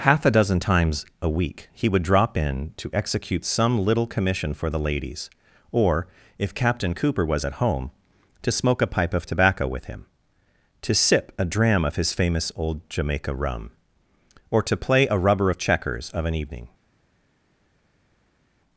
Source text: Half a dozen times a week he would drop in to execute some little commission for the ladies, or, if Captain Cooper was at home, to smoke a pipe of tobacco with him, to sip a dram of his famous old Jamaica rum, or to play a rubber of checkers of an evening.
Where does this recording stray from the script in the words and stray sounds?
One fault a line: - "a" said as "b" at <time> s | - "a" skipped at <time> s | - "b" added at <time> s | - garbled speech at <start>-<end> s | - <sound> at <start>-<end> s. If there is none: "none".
none